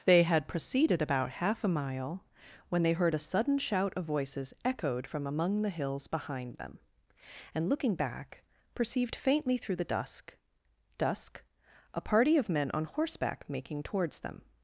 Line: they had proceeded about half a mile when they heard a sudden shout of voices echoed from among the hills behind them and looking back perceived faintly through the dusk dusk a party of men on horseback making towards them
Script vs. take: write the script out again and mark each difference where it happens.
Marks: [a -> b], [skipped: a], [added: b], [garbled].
they had proceeded about half a mile when they heard a sudden shout of voices echoed from among the hills behind them and looking back perceived faintly through the dusk dusk a party of men on horseback making towards them